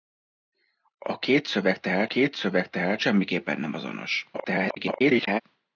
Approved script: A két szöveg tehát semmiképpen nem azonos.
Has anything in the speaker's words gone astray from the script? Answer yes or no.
yes